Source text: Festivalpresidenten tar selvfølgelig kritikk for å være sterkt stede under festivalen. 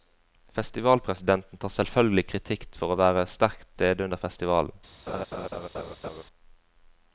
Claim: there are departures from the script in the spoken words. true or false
false